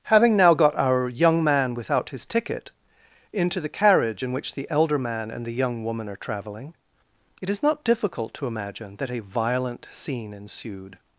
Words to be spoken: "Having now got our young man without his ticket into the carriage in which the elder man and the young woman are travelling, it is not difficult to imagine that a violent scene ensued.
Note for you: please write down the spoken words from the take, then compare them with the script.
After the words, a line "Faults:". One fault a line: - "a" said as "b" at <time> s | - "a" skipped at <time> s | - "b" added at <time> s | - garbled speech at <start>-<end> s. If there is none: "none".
"Having now got our young man without his ticket into the carriage in which the elder man and the young woman are travelling, it is not difficult to imagine that a violent scene ensued.
Faults:
none